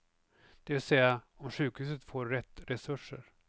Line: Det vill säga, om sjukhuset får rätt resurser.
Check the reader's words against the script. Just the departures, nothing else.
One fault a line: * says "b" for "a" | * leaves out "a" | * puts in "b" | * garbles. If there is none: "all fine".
all fine